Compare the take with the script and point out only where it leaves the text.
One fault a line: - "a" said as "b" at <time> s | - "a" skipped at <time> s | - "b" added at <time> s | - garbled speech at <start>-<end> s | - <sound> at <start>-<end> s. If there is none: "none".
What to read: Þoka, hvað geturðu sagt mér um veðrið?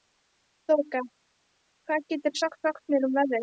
- "sagt" added at 2.7 s